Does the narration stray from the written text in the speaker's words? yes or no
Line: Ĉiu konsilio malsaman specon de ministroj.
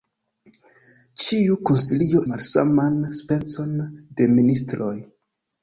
no